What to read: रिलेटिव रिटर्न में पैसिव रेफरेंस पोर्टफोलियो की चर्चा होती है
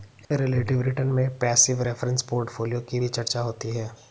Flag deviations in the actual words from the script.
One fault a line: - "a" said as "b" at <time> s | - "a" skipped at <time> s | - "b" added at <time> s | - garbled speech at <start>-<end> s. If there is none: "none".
- "भी" added at 3.0 s